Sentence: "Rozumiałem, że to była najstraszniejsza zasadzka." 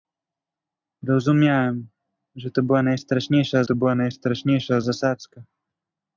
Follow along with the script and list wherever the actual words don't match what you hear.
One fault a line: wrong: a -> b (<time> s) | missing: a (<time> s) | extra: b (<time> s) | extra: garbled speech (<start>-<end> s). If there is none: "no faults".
extra: to była najstraszniejsza (3.6 s)